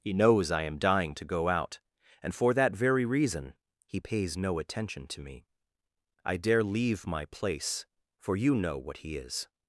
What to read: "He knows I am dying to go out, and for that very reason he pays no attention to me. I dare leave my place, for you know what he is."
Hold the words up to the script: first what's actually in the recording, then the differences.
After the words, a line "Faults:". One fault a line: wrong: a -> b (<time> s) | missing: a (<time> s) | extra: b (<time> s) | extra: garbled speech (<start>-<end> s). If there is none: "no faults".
"He knows I am dying to go out, and for that very reason he pays no attention to me. I dare leave my place, for you know what he is."
Faults:
no faults